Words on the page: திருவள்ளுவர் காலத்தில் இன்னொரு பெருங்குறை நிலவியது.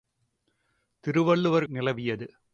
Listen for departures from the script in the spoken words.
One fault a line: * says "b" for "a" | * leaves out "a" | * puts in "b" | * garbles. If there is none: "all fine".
* leaves out "காலத்தில் இன்னொரு பெருங்குறை"